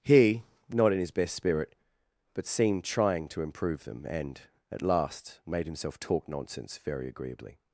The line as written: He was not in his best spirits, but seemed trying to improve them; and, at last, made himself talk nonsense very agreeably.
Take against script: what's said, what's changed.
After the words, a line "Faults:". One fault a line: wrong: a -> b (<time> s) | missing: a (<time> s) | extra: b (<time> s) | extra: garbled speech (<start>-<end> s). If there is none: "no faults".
He not in his best spirit, but seemed trying to improve them; and, at last, made himself talk nonsense very agreeably.
Faults:
missing: was (0.4 s)
wrong: spirits -> spirit (1.3 s)